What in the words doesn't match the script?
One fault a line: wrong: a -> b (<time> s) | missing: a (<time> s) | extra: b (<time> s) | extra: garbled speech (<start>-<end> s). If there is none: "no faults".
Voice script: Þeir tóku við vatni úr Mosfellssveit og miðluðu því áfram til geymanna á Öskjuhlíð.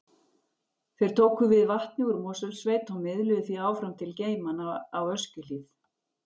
no faults